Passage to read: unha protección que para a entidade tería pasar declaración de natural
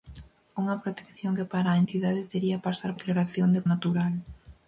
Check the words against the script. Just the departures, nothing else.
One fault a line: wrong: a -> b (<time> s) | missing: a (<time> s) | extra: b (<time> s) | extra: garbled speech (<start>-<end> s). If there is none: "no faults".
no faults